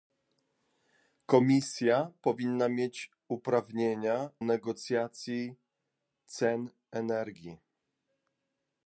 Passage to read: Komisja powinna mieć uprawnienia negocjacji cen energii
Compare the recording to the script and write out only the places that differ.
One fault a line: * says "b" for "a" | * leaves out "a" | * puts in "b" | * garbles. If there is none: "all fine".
all fine